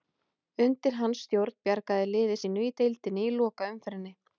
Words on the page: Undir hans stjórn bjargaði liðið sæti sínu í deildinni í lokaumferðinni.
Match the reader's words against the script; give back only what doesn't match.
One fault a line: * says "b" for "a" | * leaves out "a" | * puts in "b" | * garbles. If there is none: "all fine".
* leaves out "sæti"